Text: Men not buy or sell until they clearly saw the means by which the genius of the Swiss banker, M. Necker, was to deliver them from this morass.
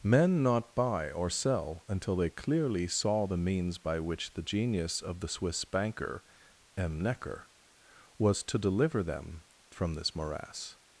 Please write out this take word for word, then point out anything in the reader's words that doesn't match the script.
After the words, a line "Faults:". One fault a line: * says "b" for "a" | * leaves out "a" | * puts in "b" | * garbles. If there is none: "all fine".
Men not buy or sell until they clearly saw the means by which the genius of the Swiss banker, M. Necker, was to deliver them from this morass.
Faults:
all fine